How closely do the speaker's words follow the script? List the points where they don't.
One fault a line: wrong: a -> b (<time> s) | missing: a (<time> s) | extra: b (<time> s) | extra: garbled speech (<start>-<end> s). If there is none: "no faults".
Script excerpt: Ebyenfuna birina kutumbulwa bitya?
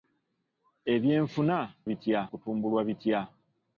wrong: birina -> bitya (1.9 s)